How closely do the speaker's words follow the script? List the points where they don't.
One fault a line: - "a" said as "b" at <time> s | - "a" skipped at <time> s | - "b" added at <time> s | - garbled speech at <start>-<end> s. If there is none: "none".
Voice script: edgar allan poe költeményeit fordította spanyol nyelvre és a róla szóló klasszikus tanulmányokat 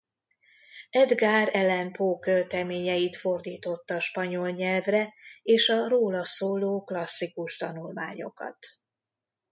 none